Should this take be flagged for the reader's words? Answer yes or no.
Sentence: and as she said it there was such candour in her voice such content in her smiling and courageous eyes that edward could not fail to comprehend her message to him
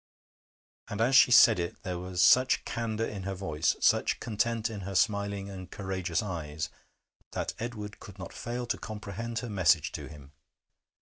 no